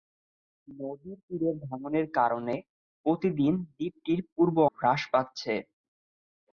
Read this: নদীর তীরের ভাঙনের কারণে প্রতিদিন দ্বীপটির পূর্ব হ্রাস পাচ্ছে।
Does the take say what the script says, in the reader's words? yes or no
yes